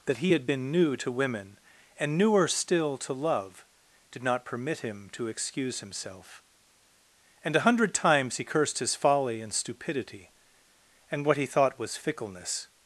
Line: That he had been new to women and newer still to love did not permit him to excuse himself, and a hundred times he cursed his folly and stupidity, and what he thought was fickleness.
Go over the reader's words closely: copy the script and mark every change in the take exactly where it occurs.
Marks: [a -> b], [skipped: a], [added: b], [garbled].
That he had been new to women and newer still to love did not permit him to excuse himself, and a hundred times he cursed his folly and stupidity, and what he thought was fickleness.